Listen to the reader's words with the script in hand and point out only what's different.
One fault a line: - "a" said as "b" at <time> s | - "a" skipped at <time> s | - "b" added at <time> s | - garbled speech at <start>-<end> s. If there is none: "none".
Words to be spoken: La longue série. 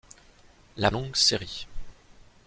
none